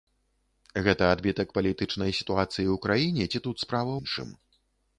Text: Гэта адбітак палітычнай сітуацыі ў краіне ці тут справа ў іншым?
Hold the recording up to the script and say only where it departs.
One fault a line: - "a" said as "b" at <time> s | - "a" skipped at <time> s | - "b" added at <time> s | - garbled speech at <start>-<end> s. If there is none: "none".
- "ў" skipped at 3.9 s